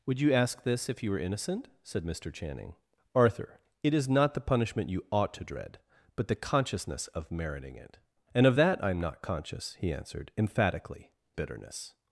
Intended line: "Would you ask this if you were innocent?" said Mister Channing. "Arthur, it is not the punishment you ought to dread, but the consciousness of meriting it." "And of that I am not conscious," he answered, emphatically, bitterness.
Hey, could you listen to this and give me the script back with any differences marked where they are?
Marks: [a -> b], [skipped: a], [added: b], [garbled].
"Would you ask this if you were innocent?" said Mister Channing. "Arthur, it is not the punishment you ought to dread, but the consciousness of meriting it." "And of that I am not conscious," he answered, emphatically, bitterness.